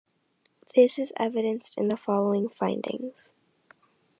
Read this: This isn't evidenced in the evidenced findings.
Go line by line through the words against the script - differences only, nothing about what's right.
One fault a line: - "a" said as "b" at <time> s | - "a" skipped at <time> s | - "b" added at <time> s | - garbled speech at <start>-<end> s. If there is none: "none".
- "isn't" said as "is" at 1.0 s
- "evidenced" said as "following" at 2.0 s